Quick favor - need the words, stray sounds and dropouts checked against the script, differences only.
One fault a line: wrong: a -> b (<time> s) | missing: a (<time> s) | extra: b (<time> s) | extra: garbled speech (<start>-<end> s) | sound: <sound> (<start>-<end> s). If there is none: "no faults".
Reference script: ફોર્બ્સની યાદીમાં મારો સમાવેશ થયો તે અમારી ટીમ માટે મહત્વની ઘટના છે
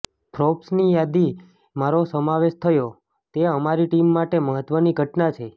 no faults